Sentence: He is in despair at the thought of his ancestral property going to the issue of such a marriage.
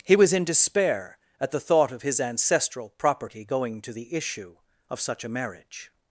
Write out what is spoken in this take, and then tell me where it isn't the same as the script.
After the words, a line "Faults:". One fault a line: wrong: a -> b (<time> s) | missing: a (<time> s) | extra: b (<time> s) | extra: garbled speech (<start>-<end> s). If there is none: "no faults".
He was in despair at the thought of his ancestral property going to the issue of such a marriage.
Faults:
wrong: is -> was (0.1 s)